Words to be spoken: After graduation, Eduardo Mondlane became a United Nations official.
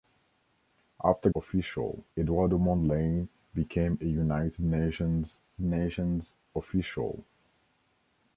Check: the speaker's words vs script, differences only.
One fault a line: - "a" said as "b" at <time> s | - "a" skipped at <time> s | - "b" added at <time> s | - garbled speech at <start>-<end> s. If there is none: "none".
- "graduation" said as "official" at 1.4 s
- "Nations" added at 5.6 s